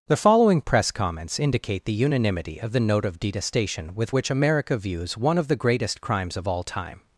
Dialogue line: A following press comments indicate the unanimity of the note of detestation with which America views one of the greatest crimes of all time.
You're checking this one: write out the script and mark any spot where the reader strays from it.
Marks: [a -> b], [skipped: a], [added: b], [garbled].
[A -> The] following press comments indicate the unanimity of the note of detestation with which America views one of the greatest crimes of all time.